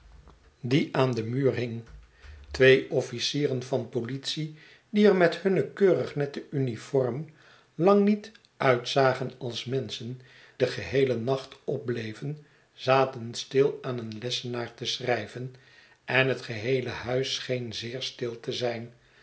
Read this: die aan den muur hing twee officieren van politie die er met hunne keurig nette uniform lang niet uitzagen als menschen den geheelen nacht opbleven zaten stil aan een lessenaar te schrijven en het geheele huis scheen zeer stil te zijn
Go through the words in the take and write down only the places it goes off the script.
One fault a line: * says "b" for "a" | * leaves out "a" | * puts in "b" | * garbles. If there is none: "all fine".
all fine